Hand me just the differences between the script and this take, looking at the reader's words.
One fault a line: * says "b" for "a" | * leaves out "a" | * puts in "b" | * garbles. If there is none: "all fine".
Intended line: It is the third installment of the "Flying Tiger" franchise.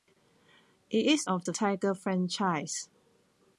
* leaves out "the third installment"
* leaves out "Flying"